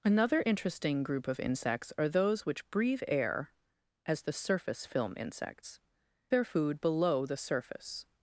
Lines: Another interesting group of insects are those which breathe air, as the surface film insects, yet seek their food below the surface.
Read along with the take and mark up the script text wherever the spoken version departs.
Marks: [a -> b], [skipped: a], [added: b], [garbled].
Another interesting group of insects are those which breathe air, as the surface film insects, [skipped: yet seek] their food below the surface.